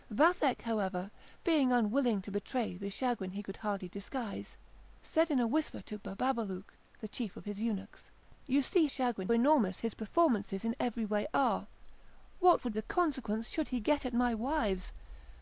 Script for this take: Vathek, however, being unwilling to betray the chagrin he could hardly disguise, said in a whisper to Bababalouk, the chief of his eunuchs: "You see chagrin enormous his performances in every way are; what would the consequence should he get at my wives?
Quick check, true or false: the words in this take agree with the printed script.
true